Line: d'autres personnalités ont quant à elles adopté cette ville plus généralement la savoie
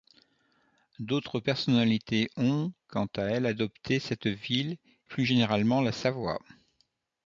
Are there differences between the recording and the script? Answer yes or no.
no